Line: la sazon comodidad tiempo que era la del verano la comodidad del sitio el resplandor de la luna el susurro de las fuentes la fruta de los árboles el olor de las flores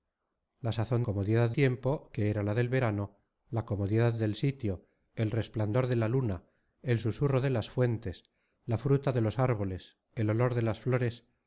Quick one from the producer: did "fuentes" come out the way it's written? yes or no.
yes